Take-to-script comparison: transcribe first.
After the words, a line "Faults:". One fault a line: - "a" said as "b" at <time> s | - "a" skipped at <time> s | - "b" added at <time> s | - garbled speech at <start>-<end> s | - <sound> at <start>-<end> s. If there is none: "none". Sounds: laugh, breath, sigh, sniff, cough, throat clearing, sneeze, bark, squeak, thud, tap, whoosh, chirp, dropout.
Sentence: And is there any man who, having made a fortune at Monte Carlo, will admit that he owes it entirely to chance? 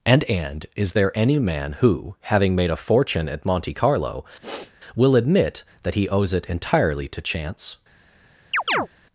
And and is there any man who, having made a fortune at Monte Carlo, will admit that he owes it entirely to chance?
Faults:
- "and" added at 0.2 s
- sniff at 4.4-4.7 s
- chirp at 8.5-8.9 s